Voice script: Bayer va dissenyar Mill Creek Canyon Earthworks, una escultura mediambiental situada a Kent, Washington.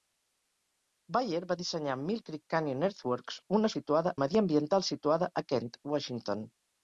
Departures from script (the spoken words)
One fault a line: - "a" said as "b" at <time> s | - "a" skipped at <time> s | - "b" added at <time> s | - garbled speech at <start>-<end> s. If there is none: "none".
- "escultura" said as "situada" at 3.7 s